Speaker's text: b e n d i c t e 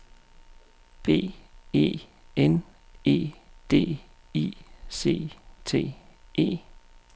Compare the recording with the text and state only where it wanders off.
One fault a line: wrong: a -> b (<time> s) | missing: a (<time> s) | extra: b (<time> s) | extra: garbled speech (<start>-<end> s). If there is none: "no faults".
extra: e (3.0 s)